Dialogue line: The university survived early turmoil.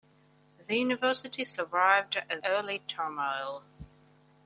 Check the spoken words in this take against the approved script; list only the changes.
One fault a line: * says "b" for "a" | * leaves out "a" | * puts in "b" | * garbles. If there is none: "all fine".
all fine